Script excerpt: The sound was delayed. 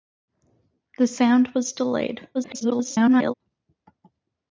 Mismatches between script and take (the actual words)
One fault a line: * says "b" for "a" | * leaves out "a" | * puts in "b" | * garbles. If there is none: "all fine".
* garbles